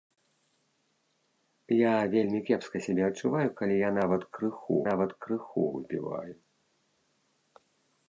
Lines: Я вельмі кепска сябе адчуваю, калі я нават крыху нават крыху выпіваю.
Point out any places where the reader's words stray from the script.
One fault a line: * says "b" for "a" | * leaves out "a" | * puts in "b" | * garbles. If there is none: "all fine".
all fine